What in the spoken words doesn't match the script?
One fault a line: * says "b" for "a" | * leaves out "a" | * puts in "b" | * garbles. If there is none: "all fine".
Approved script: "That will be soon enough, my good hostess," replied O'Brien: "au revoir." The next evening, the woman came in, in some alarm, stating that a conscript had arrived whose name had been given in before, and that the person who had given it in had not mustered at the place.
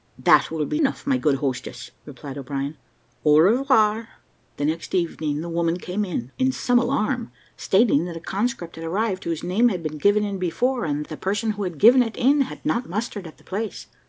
* leaves out "soon"